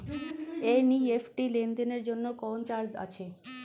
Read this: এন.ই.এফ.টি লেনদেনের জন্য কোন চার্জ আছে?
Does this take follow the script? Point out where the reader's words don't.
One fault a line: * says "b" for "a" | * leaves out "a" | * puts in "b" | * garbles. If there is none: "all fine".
all fine